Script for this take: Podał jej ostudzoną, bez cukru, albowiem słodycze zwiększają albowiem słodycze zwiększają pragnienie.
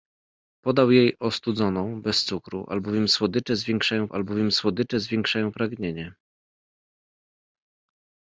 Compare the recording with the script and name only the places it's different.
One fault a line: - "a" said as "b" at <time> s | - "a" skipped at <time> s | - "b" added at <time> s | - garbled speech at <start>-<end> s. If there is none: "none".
none